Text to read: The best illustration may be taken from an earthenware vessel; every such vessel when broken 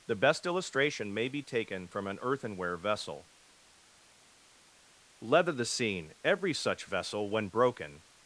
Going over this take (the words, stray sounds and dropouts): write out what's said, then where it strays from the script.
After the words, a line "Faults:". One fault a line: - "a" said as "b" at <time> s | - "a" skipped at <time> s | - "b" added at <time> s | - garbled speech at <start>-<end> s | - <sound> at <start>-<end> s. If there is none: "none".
The best illustration may be taken from an earthenware vessel; leather the scene every such vessel when broken
Faults:
- "leather the scene" added at 5.2 s